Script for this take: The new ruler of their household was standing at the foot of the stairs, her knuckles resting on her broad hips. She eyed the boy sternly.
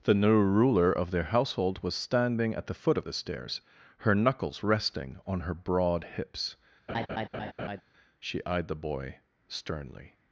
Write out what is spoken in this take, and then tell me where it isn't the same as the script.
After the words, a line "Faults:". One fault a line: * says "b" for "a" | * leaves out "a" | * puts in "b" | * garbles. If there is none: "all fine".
The new ruler of their household was standing at the foot of the stairs, her knuckles resting on her broad hips. She eyed the boy sternly.
Faults:
all fine